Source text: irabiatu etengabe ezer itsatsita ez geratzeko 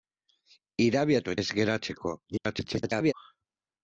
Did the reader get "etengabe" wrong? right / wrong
wrong